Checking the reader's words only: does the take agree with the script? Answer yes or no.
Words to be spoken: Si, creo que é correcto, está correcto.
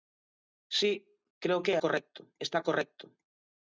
yes